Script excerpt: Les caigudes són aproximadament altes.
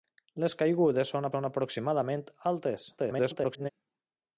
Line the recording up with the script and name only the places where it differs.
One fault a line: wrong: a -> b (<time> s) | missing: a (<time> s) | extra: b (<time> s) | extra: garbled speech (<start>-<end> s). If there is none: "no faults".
extra: són (1.3 s)
extra: garbled speech (3.0-3.7 s)